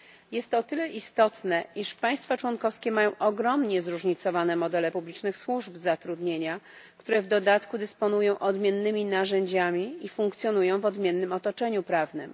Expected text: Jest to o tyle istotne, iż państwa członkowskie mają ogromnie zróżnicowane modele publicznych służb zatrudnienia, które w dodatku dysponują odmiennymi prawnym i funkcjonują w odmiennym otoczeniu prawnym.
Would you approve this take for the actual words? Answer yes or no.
no